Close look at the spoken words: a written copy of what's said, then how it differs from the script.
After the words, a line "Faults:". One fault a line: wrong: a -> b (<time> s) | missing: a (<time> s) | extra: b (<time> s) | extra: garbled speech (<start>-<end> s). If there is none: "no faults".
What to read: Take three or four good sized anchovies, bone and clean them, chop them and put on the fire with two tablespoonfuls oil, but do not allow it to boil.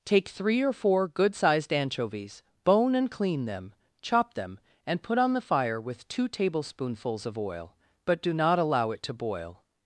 Take three or four good sized anchovies, bone and clean them, chop them and put on the fire with two tablespoonfuls of oil, but do not allow it to boil.
Faults:
extra: of (7.2 s)